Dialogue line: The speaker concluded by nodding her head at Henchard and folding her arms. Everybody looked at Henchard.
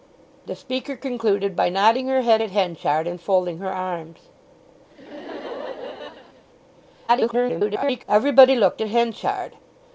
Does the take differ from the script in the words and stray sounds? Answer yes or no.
yes